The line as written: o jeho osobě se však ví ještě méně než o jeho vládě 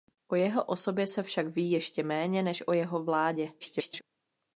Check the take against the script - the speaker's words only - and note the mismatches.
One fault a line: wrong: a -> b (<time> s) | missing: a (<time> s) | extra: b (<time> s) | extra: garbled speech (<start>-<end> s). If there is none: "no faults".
extra: garbled speech (3.6-4.0 s)